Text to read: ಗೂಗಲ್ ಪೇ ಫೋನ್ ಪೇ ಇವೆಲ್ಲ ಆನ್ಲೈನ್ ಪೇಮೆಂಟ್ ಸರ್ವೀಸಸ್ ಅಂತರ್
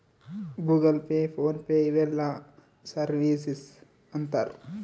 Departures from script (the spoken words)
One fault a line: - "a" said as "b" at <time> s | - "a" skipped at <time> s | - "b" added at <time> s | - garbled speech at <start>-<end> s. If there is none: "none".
- "ಆನ್ಲೈನ್ ಪೇಮೆಂಟ್" skipped at 2.2 s